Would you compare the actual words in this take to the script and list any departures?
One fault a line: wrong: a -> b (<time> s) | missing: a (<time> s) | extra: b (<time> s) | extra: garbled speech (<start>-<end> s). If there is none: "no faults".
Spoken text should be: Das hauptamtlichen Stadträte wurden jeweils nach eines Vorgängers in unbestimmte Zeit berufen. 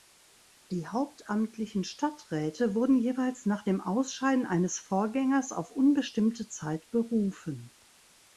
wrong: Das -> Die (0.7 s)
extra: dem Ausscheiden (3.6 s)
wrong: in -> auf (5.5 s)